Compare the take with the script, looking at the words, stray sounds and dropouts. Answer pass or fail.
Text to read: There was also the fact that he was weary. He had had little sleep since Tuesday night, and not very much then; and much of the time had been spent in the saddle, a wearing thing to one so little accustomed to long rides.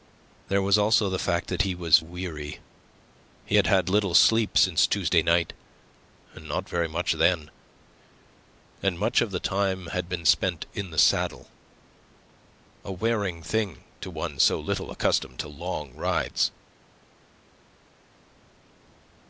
pass